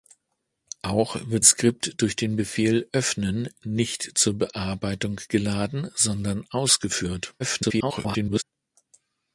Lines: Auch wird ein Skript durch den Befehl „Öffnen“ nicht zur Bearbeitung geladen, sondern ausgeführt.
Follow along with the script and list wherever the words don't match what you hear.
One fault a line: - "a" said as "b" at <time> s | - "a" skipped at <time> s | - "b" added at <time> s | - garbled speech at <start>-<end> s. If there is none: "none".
- "ein" skipped at 1.4 s
- garbled speech at 7.4-8.4 s